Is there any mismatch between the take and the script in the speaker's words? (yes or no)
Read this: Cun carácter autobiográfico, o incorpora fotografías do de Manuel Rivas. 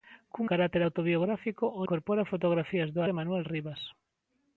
no